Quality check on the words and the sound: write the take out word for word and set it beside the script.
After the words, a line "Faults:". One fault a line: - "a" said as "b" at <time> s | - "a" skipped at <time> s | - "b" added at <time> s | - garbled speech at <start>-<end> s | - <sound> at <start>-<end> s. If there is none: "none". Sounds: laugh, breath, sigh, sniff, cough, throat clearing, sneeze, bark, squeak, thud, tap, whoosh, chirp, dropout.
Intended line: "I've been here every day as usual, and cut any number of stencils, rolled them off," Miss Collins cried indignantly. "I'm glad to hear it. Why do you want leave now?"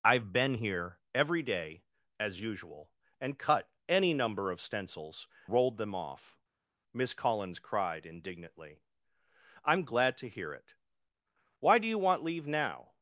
"I've been here every day as usual, and cut any number of stencils, rolled them off," Miss Collins cried indignantly. "I'm glad to hear it. Why do you want leave now?"
Faults:
none